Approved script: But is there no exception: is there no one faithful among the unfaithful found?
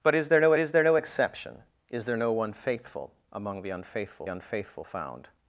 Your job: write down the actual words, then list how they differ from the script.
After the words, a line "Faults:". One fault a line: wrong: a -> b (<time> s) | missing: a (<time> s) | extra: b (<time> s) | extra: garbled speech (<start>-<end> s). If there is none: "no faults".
But is there no is there no exception: is there no one faithful among the unfaithful unfaithful found?
Faults:
extra: is there no (0.6 s)
extra: unfaithful (4.3 s)